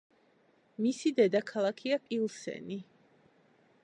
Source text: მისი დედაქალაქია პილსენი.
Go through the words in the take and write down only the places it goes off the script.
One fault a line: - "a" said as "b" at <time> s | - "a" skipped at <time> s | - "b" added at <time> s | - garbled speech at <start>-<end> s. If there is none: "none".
none